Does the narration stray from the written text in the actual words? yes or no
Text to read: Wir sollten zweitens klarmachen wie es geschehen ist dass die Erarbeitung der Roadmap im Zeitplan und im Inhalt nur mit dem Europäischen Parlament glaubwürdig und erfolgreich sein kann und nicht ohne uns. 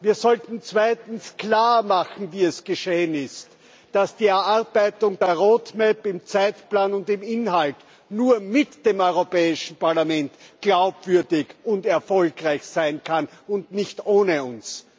no